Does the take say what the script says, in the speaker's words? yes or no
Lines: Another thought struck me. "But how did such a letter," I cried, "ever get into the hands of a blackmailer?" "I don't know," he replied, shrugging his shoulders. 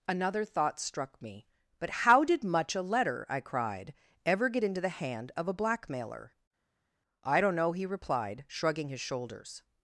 no